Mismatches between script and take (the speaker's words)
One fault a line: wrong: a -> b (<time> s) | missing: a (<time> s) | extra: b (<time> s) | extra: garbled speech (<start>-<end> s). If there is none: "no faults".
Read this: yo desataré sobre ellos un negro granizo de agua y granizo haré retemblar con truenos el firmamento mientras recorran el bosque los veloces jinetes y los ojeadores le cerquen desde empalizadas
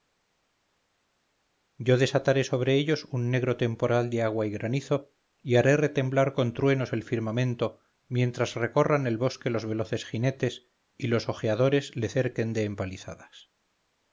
wrong: granizo -> temporal (3.6 s)
extra: y (5.4 s)
wrong: desde -> de (12.5 s)